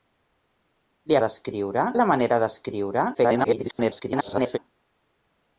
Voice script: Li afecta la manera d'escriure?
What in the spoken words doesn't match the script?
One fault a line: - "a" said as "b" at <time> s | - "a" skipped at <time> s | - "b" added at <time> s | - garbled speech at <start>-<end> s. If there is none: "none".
- "afecta" said as "d'escriure" at 1.2 s
- garbled speech at 3.1-4.6 s